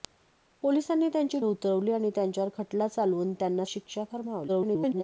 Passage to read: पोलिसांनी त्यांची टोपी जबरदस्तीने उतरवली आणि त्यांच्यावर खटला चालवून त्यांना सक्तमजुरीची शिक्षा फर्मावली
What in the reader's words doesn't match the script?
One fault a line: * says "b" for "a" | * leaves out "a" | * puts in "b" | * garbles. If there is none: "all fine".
* leaves out "टोपी जबरदस्तीने"
* leaves out "सक्तमजुरीची"
* garbles